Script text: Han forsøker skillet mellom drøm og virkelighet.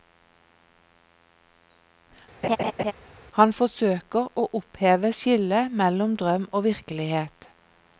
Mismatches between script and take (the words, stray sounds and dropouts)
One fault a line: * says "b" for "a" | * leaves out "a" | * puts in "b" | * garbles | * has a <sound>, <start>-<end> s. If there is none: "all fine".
* has a laugh, 2.4-2.9 s
* puts in "å oppheve"